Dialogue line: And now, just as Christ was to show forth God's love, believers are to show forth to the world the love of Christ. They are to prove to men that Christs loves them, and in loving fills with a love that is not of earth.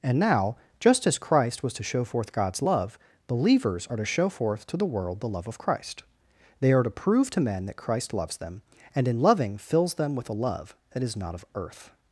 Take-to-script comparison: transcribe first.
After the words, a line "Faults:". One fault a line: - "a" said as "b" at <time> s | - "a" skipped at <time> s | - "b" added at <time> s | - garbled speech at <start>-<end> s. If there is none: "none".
And now, just as Christ was to show forth God's love, believers are to show forth to the world the love of Christ. They are to prove to men that Christ loves them, and in loving fills them with a love that is not of earth.
Faults:
- "Christs" said as "Christ" at 7.8 s
- "them" added at 10.0 s